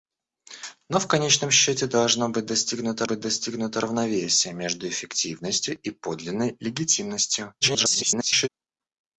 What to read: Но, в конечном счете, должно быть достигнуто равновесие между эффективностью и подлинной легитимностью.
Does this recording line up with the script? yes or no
no